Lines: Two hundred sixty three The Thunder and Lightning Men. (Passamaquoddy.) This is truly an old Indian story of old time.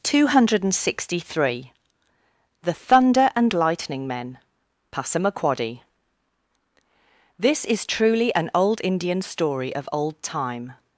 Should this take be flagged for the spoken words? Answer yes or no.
no